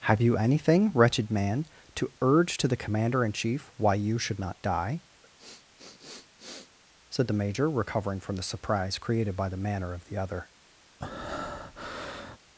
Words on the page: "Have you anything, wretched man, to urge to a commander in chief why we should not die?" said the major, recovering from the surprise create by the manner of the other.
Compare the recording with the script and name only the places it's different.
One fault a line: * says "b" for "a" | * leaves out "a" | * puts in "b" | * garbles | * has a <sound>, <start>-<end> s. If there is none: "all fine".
* says "the" for "a"
* says "you" for "we"
* has a sniff, 5.2-6.8 s
* says "created" for "create"
* has a breath, 11.0-12.4 s